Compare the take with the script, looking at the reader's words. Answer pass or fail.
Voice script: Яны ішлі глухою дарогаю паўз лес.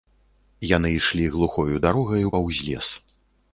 pass